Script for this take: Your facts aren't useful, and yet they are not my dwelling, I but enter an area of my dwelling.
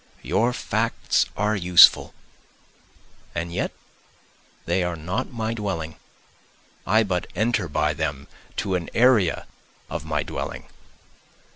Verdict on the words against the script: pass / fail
fail